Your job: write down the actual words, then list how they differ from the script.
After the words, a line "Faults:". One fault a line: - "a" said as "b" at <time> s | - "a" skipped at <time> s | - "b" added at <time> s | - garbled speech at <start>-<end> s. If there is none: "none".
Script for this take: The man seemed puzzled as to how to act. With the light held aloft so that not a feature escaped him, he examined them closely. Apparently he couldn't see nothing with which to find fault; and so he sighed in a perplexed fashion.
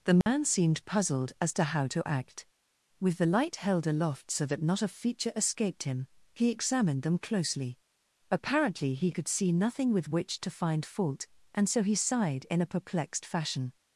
The man seemed puzzled as to how to act. With the light held aloft so that not a feature escaped him, he examined them closely. Apparently he could see nothing with which to find fault; and so he sighed in a perplexed fashion.
Faults:
- "couldn't" said as "could" at 9.1 s